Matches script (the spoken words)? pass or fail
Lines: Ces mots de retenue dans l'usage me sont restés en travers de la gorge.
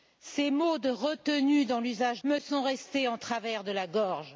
pass